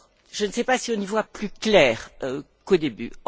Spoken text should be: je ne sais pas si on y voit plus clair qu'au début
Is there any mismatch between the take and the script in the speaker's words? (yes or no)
no